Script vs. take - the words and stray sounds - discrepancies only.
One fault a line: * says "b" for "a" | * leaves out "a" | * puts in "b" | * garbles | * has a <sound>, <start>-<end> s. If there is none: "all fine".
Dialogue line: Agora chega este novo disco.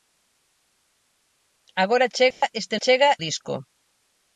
* has a dropout, 2.3-2.4 s
* says "chega" for "novo"